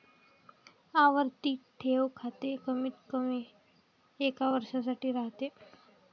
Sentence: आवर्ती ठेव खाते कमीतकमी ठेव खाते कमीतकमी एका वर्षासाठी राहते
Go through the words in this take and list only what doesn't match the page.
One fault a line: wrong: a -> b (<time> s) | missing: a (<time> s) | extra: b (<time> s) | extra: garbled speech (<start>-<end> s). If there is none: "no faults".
missing: ठेव खाते कमीतकमी (3.4 s)